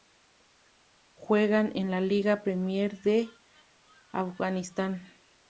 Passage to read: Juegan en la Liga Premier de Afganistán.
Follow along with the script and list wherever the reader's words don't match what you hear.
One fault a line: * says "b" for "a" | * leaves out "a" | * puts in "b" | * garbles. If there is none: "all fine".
all fine